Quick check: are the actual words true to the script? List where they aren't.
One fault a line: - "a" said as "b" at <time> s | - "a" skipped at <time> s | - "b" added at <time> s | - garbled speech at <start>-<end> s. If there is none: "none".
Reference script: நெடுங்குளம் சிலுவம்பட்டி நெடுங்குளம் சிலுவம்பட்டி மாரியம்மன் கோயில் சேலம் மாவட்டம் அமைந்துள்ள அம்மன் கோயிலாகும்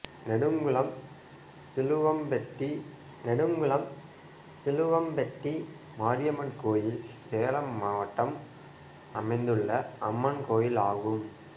none